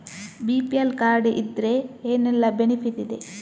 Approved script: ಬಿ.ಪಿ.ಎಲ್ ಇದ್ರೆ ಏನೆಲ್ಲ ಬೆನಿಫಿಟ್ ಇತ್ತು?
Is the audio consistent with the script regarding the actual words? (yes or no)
no